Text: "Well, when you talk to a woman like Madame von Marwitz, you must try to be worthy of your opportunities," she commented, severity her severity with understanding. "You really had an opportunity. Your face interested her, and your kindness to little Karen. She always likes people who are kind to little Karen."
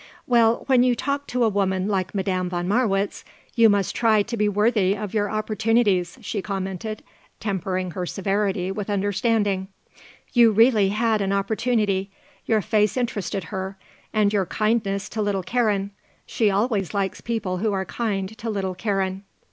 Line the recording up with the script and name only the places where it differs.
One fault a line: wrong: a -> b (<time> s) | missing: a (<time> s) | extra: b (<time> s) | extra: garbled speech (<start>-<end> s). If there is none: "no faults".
wrong: severity -> tempering (7.4 s)